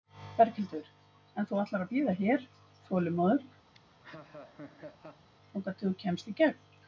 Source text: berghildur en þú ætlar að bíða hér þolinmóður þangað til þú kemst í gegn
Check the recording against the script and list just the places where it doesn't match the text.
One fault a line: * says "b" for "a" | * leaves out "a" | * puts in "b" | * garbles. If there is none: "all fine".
all fine